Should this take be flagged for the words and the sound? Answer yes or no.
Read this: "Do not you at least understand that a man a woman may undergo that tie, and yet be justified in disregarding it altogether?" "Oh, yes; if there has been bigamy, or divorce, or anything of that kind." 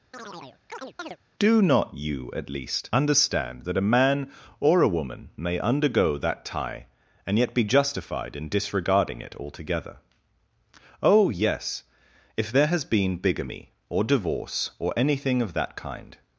yes